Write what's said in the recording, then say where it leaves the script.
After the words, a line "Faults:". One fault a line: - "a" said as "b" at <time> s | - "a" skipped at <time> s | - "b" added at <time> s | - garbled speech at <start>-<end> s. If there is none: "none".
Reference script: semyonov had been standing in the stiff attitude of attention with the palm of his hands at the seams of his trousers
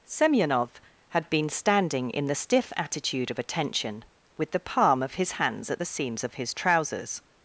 semyonov had been standing in the stiff attitude of attention with the palm of his hands at the seams of his trousers
Faults:
none